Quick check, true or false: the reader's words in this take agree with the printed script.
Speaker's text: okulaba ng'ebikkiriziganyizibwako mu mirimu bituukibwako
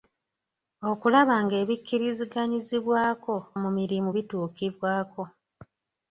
true